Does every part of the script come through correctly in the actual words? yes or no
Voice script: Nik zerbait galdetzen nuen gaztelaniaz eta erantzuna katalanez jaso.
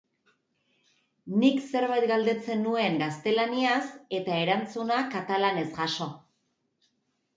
yes